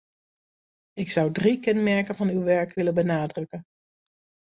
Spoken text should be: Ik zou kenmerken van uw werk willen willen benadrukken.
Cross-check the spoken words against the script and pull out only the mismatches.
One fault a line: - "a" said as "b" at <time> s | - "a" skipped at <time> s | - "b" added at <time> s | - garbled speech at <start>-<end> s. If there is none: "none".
- "drie" added at 1.3 s
- "willen" skipped at 2.9 s